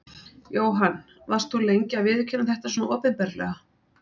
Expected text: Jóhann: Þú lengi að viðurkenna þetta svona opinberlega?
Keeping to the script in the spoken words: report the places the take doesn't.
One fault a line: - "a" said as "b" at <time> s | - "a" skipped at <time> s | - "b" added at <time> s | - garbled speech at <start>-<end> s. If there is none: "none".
- "Varst" added at 1.3 s